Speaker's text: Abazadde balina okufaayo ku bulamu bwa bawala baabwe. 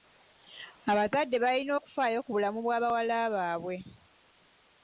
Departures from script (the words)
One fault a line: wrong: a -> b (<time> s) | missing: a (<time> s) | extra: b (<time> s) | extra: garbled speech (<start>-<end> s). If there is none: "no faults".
no faults